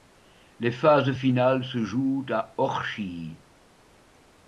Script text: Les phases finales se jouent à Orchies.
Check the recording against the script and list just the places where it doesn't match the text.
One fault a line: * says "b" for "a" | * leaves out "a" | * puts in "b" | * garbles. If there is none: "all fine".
all fine